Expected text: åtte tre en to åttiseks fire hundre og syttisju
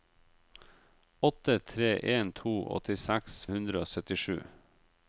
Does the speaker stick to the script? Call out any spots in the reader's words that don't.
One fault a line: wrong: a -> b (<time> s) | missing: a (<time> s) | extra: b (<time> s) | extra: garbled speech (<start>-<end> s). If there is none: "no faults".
missing: fire (3.4 s)